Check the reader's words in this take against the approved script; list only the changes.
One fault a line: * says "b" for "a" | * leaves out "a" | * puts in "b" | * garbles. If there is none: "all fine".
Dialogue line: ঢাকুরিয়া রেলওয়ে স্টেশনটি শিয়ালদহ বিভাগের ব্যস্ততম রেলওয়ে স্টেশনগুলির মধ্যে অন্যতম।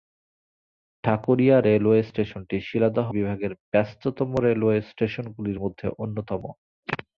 all fine